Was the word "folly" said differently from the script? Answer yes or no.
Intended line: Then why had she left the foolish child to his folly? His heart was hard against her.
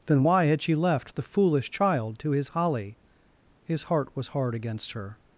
yes